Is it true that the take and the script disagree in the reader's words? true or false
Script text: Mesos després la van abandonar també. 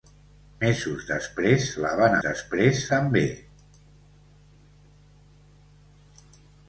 true